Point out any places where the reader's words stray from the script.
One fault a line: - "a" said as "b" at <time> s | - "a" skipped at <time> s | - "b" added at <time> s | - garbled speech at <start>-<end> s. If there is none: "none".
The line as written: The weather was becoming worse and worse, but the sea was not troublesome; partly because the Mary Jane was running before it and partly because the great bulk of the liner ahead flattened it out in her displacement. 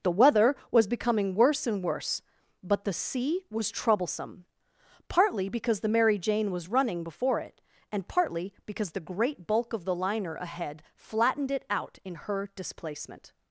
- "not" skipped at 3.7 s